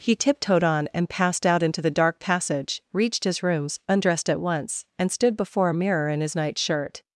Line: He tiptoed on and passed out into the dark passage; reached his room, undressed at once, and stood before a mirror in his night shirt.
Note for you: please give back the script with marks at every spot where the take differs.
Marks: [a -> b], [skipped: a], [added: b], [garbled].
He tiptoed on and passed out into the dark passage; reached his [room, -> rooms] undressed at once, and stood before a mirror in his night shirt.